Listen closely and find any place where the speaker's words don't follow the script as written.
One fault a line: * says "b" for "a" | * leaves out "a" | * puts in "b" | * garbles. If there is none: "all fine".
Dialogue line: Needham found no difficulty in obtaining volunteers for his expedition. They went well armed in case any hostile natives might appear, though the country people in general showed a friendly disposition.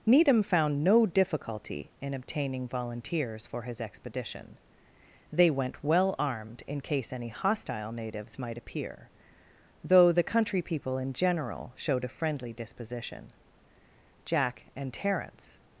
* puts in "Jack and Terence"